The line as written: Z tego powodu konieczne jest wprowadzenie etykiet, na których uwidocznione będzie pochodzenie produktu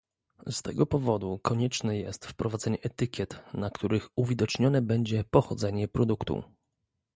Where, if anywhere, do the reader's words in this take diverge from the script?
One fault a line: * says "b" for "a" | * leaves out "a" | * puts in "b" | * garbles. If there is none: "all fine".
all fine